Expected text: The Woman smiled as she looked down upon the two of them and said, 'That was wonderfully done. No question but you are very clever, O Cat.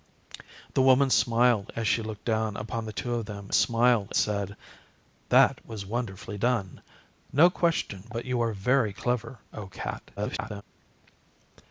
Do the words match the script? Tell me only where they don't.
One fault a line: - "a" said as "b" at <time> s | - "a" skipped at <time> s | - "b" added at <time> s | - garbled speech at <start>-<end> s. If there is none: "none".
- "and" said as "smiled" at 3.5 s
- garbled speech at 10.2-10.6 s